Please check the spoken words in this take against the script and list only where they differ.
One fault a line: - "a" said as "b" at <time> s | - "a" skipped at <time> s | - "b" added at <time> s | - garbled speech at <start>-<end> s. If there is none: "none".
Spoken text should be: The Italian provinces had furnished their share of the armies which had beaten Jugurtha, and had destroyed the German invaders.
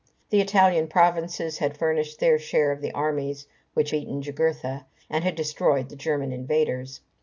- "had" skipped at 3.9 s